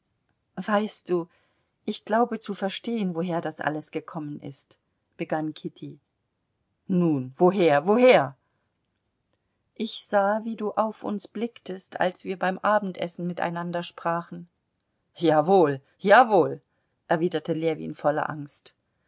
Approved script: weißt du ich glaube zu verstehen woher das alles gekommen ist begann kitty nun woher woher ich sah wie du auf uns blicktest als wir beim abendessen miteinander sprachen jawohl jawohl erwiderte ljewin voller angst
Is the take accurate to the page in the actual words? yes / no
yes